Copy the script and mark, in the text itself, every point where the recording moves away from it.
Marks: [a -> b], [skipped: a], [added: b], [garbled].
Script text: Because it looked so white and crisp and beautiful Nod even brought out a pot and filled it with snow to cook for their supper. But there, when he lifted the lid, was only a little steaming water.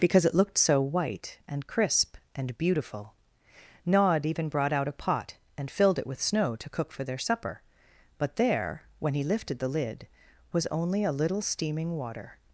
Because it looked so white and crisp and beautiful Nod even brought out a pot and filled it with snow to cook for their supper. But there, when he lifted the lid, was only a little steaming water.